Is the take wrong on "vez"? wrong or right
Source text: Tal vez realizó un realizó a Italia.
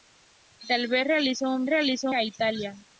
right